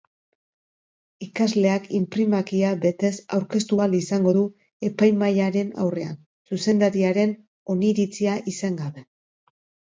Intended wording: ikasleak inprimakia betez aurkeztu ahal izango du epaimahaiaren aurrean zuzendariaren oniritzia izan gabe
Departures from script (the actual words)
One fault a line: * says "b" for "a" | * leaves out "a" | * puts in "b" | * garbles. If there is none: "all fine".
all fine